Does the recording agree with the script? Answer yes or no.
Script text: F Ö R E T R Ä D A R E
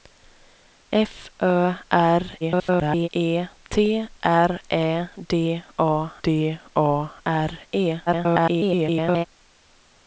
no